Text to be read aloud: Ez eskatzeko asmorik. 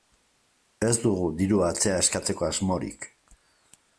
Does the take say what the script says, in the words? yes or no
no